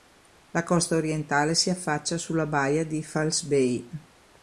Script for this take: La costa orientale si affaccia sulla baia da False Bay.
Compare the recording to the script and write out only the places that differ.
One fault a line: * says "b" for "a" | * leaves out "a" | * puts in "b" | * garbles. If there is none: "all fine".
* says "di" for "da"